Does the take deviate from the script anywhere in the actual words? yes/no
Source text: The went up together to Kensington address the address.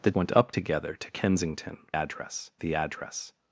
no